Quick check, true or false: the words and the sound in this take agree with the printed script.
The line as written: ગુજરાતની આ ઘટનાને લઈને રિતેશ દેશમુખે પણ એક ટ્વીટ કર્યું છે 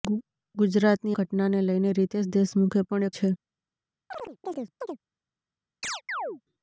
false